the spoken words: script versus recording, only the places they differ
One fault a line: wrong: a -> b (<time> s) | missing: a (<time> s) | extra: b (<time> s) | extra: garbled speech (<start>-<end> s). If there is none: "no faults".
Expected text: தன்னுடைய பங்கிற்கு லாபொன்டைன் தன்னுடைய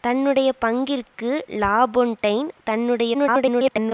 extra: garbled speech (3.1-3.9 s)